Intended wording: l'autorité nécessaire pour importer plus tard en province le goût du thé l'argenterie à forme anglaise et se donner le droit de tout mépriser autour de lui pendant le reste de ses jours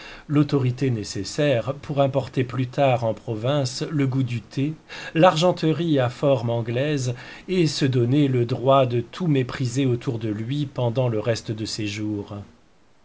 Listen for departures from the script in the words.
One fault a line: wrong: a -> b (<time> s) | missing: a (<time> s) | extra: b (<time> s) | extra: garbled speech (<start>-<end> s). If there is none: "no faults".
no faults